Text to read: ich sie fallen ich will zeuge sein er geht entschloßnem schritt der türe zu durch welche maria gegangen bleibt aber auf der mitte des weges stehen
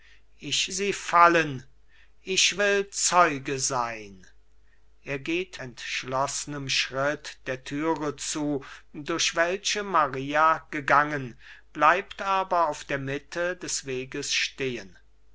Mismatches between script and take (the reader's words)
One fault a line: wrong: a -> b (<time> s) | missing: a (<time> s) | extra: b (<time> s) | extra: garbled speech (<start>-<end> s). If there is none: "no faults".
no faults